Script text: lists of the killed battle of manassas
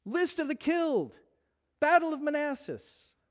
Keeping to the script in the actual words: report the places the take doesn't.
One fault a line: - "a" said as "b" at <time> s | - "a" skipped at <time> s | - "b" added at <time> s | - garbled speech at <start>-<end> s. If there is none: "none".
- "lists" said as "list" at 0.1 s